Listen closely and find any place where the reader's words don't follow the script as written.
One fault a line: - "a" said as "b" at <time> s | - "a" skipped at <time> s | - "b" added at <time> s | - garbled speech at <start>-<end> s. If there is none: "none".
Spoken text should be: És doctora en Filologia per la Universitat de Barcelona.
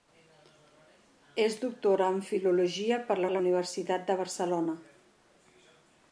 - "la" added at 3.3 s